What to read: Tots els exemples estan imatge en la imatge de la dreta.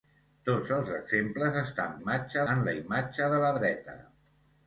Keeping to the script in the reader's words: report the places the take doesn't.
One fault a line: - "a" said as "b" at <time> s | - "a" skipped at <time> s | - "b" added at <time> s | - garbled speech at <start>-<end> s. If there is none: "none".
none